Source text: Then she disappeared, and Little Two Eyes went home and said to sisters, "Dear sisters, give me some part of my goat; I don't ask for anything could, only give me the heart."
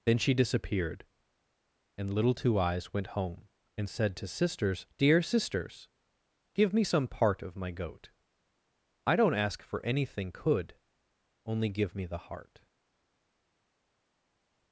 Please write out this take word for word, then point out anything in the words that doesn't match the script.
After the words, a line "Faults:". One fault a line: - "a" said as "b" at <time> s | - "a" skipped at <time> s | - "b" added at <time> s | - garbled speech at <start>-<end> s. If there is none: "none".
Then she disappeared, and Little Two Eyes went home and said to sisters, "Dear sisters, give me some part of my goat; I don't ask for anything could, only give me the heart."
Faults:
none